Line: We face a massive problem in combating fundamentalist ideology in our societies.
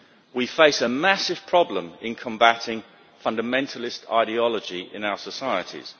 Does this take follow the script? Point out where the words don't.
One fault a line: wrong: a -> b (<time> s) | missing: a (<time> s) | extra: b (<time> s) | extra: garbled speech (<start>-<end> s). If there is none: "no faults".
no faults